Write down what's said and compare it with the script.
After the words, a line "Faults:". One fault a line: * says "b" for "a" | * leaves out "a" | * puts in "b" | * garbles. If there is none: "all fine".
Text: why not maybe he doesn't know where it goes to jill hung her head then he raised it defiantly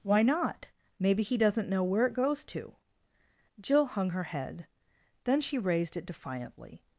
why not maybe he doesn't know where it goes to jill hung her head then she raised it defiantly
Faults:
* says "she" for "he"